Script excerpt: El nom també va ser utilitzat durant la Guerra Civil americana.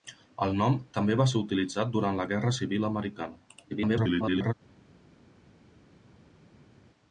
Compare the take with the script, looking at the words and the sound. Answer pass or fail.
fail